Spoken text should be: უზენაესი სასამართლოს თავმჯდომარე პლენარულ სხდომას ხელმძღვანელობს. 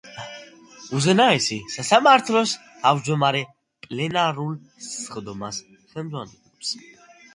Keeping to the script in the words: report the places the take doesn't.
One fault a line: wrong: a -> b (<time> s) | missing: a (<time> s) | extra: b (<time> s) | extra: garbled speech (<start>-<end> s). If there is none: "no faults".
no faults